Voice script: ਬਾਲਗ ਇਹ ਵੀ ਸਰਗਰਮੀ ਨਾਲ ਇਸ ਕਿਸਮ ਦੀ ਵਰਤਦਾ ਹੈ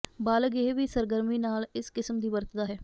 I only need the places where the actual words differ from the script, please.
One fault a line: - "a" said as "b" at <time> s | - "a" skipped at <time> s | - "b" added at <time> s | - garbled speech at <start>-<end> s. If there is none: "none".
none